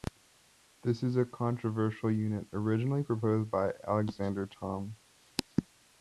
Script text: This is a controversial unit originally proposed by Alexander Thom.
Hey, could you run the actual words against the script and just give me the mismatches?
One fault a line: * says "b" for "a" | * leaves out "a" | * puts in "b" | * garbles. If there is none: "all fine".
all fine